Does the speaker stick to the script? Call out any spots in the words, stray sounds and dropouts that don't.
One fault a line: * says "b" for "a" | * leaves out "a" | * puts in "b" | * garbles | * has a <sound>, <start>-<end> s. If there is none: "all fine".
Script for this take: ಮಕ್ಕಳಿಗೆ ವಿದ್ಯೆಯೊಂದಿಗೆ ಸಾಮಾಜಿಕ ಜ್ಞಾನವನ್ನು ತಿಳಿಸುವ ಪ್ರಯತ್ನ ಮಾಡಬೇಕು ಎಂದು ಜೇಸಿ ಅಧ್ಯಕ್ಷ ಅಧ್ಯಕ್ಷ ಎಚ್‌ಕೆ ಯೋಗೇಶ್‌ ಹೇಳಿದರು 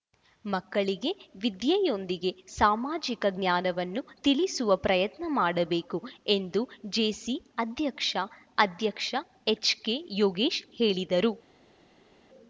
all fine